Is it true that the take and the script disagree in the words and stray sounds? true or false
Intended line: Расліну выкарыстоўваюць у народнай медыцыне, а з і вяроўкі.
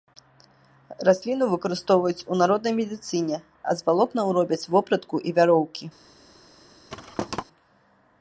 true